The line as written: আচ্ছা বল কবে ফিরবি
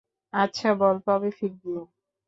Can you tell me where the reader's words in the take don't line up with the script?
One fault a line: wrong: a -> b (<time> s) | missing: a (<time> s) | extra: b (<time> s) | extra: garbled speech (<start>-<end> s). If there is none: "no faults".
no faults